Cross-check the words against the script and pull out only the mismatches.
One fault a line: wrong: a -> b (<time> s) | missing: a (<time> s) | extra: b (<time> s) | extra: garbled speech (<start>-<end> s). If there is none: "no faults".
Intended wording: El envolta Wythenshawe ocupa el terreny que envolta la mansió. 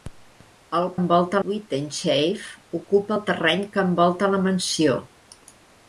no faults